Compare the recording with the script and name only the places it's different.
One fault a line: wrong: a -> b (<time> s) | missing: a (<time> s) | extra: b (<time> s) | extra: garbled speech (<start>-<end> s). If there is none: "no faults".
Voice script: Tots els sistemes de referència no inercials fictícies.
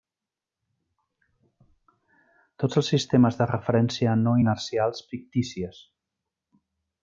no faults